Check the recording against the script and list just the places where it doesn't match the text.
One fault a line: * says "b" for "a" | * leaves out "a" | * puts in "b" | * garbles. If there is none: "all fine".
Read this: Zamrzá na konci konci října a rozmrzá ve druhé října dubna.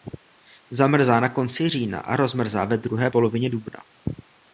* leaves out "konci"
* says "polovině" for "října"